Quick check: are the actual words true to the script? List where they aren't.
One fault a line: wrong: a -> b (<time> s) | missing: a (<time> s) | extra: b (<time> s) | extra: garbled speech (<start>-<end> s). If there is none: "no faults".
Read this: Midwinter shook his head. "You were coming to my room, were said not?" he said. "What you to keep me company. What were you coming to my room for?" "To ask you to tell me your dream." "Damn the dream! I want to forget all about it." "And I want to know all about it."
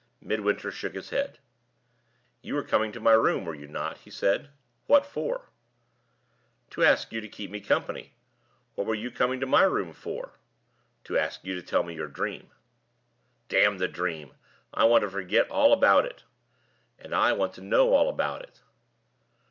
wrong: said -> you (3.5 s)
extra: for To ask (5.0 s)